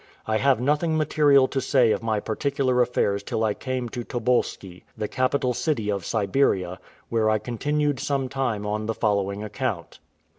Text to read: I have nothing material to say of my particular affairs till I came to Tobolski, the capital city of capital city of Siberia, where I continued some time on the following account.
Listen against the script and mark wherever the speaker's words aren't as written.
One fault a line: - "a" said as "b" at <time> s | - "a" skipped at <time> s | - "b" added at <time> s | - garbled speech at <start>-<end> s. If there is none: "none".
- "capital city of" skipped at 6.0 s